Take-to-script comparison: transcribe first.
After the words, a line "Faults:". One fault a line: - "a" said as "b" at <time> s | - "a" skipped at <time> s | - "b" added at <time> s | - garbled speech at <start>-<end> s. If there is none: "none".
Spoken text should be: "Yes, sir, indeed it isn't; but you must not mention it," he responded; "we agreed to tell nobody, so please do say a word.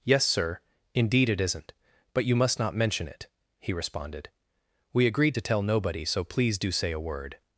"Yes, sir, indeed it isn't; but you must not mention it," he responded; "we agreed to tell nobody, so please do say a word.
Faults:
none